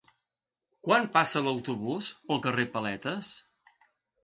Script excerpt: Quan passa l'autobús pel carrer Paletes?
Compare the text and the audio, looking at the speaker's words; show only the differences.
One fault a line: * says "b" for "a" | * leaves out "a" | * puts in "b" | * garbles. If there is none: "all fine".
all fine